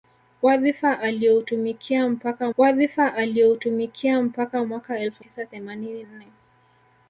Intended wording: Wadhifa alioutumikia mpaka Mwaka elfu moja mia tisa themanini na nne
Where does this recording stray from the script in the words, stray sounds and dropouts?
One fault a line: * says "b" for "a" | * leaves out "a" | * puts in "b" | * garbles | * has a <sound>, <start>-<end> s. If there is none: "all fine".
* puts in "wadhifa alioutumikia mpaka"
* leaves out "moja mia"
* leaves out "na"